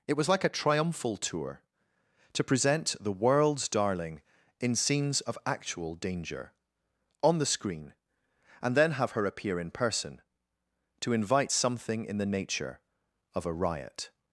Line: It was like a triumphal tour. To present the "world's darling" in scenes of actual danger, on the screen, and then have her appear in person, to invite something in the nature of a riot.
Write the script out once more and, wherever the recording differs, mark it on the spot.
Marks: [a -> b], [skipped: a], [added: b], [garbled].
It was like a triumphal tour. To present the "world's darling" in scenes of actual danger, on the screen, and then have her appear in person, to invite something in the nature of a riot.